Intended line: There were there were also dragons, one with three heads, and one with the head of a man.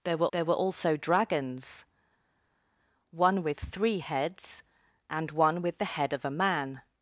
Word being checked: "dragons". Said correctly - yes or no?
yes